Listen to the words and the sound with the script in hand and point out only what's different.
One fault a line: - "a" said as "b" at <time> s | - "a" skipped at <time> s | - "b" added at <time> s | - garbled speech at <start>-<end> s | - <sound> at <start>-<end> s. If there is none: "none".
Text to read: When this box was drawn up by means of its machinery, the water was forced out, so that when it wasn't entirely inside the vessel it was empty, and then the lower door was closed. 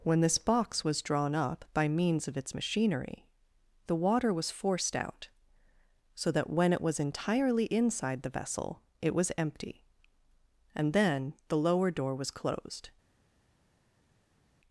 - "wasn't" said as "was" at 6.8 s